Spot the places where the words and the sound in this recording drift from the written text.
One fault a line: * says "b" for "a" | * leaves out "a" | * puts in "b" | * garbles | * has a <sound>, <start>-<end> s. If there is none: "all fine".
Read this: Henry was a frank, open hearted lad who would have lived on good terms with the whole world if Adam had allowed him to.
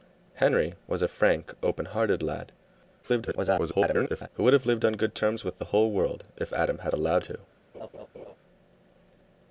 * garbles
* leaves out "him"
* has a laugh, 7.7-8.4 s